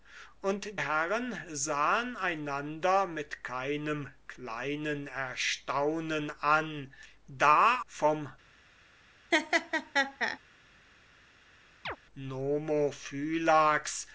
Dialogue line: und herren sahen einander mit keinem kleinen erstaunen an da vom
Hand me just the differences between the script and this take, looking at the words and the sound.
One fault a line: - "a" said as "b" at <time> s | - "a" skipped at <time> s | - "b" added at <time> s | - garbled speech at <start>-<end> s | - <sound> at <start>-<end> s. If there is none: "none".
- laugh at 9.3-10.4 s
- chirp at 11.9-12.0 s